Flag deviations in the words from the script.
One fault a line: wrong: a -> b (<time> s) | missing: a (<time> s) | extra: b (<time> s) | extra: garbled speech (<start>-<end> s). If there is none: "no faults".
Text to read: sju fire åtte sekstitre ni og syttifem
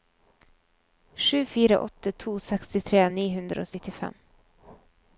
extra: to (2.1 s)
extra: hundre (3.4 s)